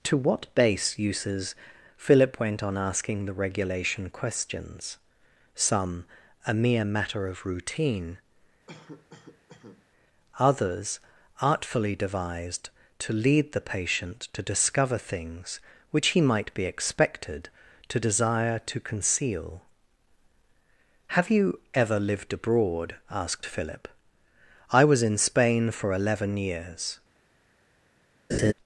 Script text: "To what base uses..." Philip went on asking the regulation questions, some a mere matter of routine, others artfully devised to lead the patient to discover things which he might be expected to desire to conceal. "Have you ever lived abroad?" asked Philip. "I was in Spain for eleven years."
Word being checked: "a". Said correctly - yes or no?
yes